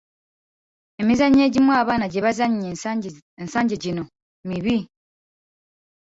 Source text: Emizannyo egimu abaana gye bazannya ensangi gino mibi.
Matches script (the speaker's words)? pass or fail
pass